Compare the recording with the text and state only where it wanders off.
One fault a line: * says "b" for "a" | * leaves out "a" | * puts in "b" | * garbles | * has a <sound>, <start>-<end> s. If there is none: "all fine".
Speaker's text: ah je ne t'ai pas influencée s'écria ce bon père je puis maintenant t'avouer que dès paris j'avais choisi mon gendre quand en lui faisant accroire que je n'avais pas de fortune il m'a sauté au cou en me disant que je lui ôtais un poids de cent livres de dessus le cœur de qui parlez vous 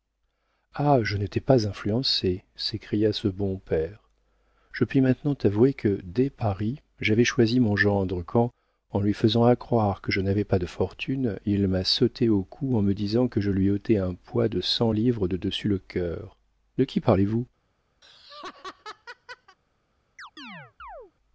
* has a laugh, 18.0-19.6 s
* has a chirp, 20.2-21.1 s